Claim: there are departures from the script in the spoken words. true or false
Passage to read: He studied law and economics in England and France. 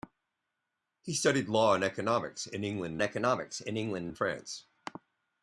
true